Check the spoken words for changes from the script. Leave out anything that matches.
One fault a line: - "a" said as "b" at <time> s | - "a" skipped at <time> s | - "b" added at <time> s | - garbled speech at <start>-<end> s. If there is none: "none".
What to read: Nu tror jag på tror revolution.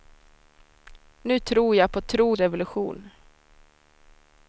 none